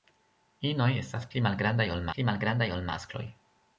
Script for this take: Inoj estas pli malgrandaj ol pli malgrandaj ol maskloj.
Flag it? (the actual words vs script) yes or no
no